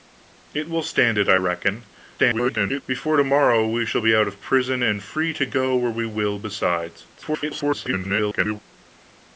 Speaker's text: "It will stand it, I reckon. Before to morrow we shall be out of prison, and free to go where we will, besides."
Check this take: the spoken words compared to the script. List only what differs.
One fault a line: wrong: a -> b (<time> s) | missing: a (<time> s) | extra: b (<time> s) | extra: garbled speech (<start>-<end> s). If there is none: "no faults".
extra: garbled speech (2.2-2.8 s)
extra: garbled speech (7.1-8.6 s)